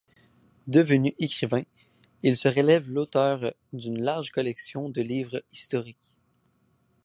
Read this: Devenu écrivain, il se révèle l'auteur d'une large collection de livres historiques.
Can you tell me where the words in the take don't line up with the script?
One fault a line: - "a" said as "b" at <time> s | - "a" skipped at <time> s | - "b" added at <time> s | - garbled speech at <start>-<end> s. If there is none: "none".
none